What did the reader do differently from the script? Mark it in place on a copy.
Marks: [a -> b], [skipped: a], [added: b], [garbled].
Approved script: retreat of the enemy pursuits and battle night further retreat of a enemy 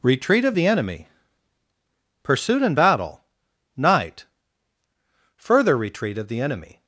retreat of the enemy [pursuits -> pursuit] and battle night further retreat of [a -> the] enemy